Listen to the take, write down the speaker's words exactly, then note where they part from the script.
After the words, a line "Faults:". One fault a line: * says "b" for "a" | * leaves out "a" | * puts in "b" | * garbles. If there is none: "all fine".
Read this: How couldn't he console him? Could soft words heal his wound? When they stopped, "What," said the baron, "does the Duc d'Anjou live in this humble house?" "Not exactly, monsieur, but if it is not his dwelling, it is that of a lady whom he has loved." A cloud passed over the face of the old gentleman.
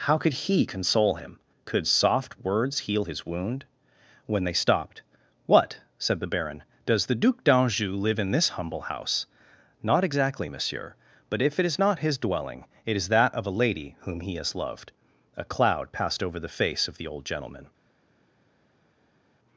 How could he console him? Could soft words heal his wound? When they stopped, "What," said the baron, "does the Duc d'Anjou live in this humble house?" "Not exactly, monsieur, but if it is not his dwelling, it is that of a lady whom he has loved." A cloud passed over the face of the old gentleman.
Faults:
* says "could" for "couldn't"